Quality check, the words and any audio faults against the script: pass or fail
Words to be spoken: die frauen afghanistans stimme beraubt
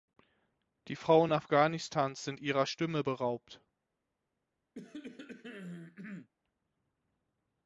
fail